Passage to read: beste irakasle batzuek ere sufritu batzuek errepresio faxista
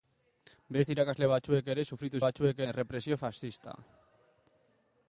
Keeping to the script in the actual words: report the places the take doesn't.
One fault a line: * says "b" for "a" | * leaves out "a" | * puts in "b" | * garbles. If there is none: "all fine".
all fine